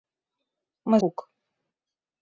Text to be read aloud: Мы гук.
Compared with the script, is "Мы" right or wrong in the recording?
right